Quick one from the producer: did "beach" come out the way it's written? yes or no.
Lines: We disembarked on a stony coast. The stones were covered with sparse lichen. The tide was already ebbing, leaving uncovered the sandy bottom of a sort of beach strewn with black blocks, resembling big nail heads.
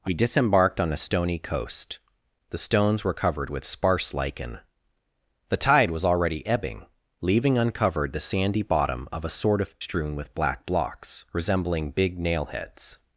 no